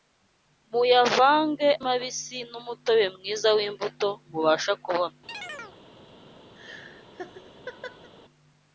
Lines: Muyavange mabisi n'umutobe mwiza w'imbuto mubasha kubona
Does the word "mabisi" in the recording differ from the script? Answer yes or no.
no